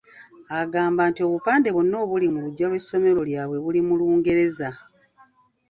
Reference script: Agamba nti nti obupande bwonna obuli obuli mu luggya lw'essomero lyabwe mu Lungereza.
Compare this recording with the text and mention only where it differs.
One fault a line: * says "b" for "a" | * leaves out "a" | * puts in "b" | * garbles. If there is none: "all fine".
* leaves out "nti"
* leaves out "obuli"
* puts in "buli"